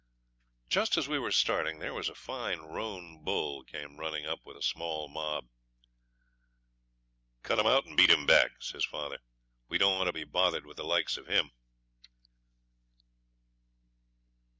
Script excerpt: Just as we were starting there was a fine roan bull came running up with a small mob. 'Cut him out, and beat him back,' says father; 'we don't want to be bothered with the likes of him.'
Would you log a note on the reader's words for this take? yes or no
no